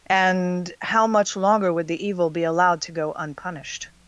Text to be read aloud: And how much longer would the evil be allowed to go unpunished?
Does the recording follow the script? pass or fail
pass